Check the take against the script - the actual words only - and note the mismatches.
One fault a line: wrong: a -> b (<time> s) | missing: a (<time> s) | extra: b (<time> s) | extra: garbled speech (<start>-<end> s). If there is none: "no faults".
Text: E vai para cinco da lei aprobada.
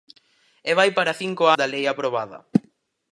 no faults